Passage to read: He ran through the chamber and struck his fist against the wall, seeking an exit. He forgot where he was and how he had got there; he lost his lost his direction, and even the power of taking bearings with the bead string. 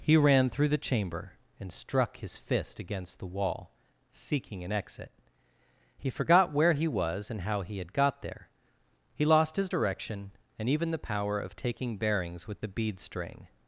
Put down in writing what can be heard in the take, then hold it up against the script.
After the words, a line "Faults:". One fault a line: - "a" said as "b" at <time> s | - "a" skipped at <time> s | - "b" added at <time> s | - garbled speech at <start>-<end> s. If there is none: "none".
He ran through the chamber and struck his fist against the wall, seeking an exit. He forgot where he was and how he had got there; he lost his direction, and even the power of taking bearings with the bead string.
Faults:
- "lost his" skipped at 9.7 s